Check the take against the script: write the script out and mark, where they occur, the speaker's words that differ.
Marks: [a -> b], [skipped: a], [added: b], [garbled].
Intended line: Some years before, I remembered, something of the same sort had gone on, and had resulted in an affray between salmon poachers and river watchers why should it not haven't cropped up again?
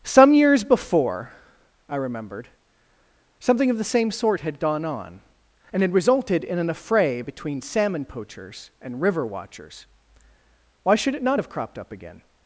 Some years before, I remembered, something of the same sort had gone on, and had resulted in an affray between salmon poachers and river watchers why should it not [haven't -> have] cropped up again?